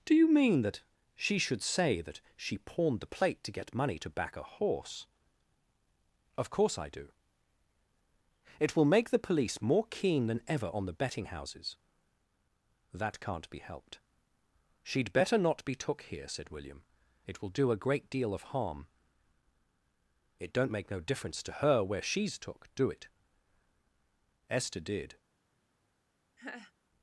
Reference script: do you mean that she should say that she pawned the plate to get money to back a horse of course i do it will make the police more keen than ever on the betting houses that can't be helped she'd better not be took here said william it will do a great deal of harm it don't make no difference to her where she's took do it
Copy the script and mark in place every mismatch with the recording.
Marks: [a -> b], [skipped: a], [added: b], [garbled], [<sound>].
do you mean that she should say that she pawned the plate to get money to back a horse of course i do it will make the police more keen than ever on the betting houses that can't be helped she'd better not be took here said william it will do a great deal of harm it don't make no difference to her where she's took do it [added: esther did] [laugh]